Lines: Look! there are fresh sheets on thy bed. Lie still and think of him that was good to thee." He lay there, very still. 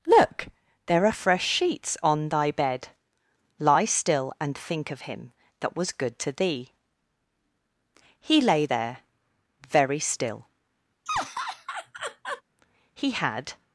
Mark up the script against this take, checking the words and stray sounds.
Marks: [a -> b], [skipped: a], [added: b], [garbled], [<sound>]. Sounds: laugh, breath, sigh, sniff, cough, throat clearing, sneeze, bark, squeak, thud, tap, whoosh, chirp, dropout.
Look! there are fresh sheets on thy bed. Lie still and think of him that was good to thee." He lay there, very still. [laugh] [added: He had]